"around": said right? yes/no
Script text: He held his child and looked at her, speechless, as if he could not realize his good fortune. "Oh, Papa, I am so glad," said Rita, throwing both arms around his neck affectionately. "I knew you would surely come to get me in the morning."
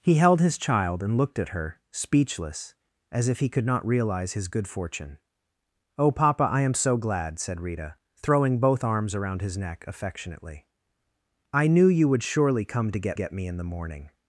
yes